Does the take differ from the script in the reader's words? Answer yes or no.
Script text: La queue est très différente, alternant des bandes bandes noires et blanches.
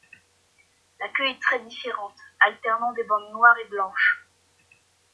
yes